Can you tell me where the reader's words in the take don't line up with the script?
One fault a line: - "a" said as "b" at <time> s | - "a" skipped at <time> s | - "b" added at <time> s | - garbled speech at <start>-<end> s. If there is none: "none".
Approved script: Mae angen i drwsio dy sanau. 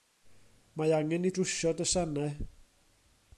none